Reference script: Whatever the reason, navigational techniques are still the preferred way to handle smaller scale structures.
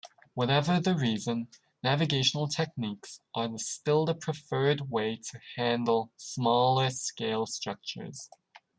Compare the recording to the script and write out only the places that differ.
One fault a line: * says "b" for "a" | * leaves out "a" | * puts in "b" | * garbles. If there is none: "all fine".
all fine